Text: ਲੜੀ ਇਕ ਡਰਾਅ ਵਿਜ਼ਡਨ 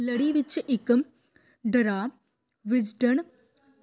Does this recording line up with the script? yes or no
no